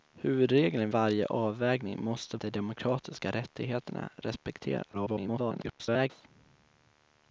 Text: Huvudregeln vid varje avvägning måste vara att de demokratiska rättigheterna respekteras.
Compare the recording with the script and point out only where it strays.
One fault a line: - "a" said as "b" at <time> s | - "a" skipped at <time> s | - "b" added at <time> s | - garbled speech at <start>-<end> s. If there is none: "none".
- "vid" skipped at 0.9 s
- "vara att" skipped at 2.4 s
- garbled speech at 4.9-6.1 s